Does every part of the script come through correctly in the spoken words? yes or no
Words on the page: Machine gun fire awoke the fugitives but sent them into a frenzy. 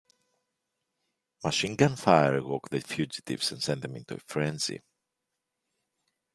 no